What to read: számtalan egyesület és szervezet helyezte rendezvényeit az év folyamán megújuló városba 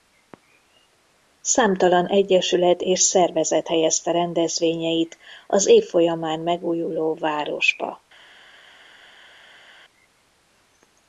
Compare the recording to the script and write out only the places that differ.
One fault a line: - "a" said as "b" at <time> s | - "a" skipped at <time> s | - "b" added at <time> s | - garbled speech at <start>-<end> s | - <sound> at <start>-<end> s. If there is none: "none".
none